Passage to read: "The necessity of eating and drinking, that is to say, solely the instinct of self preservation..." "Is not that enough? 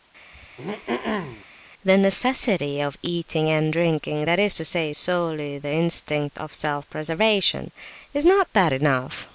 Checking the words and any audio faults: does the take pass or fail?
fail